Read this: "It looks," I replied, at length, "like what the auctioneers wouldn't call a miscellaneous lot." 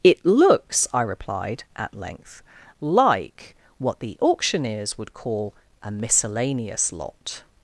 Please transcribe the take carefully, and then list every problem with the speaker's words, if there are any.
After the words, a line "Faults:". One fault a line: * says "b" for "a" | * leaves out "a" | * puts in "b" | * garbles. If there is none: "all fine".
"It looks," I replied, at length, "like what the auctioneers would call a miscellaneous lot."
Faults:
* says "would" for "wouldn't"